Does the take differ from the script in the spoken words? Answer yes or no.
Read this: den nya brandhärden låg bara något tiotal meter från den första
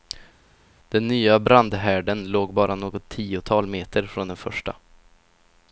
no